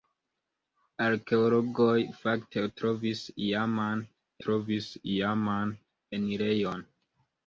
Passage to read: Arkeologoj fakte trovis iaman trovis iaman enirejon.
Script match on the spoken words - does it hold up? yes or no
yes